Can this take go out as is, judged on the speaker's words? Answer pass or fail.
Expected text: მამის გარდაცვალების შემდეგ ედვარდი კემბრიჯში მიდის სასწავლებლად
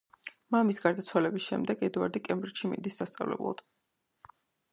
pass